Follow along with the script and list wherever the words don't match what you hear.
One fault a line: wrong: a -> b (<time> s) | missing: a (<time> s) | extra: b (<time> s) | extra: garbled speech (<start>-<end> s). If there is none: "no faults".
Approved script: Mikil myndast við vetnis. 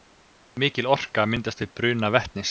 extra: orka (0.9 s)
extra: bruna (1.8 s)